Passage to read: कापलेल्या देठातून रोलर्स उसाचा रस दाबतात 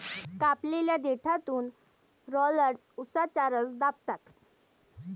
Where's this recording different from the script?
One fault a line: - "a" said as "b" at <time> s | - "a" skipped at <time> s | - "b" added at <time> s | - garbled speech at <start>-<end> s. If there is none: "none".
none